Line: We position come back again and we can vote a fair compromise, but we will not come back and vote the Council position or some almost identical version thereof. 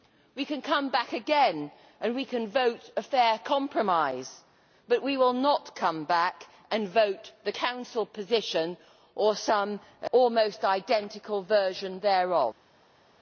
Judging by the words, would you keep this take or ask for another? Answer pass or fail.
fail